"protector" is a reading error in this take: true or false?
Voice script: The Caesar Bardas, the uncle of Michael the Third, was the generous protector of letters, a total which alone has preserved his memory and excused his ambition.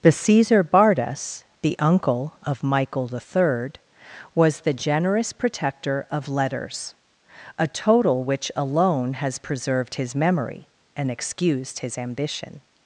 false